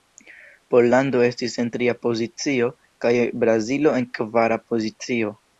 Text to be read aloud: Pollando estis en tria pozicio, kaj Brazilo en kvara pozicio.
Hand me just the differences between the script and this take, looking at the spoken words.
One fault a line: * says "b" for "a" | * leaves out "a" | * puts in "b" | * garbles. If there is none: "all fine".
all fine